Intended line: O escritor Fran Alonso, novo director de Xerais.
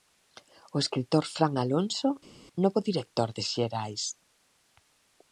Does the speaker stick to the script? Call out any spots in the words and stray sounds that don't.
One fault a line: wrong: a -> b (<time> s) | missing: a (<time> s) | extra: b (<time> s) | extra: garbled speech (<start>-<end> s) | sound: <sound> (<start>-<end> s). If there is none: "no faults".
no faults